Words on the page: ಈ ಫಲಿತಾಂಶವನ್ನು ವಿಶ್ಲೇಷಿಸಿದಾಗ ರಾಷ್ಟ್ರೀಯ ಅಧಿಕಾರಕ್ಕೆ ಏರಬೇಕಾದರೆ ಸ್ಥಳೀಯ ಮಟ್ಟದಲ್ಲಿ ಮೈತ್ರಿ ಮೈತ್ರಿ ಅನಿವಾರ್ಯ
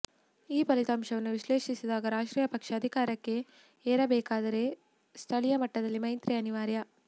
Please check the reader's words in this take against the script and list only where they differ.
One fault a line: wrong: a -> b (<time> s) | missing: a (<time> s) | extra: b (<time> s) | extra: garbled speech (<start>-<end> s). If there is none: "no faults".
extra: ಪಕ್ಷ (2.5 s)
missing: ಮೈತ್ರಿ (6.3 s)